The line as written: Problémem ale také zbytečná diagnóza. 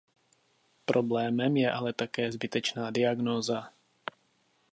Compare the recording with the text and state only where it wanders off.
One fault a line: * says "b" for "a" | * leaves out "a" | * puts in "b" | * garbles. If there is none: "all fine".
* puts in "je"